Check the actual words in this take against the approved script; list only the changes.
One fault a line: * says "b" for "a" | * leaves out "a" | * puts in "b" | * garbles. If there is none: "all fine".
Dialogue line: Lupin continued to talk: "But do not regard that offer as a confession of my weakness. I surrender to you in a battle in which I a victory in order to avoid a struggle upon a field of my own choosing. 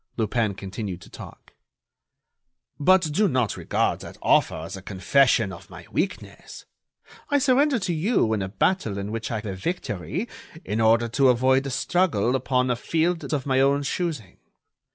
all fine